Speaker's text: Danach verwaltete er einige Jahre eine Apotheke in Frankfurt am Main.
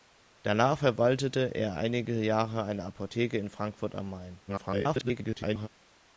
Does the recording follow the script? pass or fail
fail